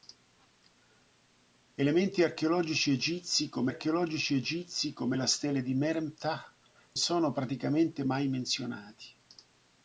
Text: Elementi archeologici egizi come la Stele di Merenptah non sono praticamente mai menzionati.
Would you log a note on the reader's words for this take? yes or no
yes